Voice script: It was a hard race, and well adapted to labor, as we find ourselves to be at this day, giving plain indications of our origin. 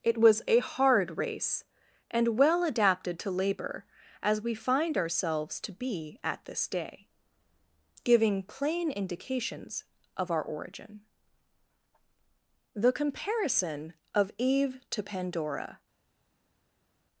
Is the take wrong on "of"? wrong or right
right